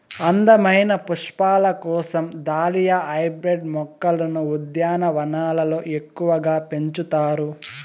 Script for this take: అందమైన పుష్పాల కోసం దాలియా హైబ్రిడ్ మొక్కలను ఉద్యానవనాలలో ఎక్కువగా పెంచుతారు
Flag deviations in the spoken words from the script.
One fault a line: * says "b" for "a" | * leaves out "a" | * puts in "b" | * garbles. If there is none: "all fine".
all fine